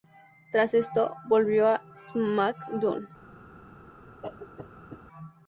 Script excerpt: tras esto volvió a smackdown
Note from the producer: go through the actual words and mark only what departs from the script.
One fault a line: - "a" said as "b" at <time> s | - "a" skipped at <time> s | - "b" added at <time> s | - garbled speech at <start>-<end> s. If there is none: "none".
none